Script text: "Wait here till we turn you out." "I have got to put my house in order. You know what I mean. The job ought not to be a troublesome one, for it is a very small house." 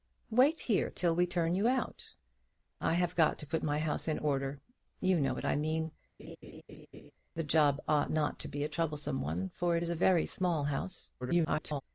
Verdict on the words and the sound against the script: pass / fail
fail